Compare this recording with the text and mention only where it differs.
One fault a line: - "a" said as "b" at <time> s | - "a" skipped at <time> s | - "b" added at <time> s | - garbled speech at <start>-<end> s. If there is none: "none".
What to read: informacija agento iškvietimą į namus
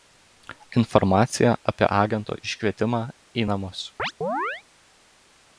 - "apie" added at 1.7 s